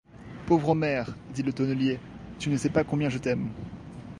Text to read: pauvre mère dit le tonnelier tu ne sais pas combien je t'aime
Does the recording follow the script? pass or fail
pass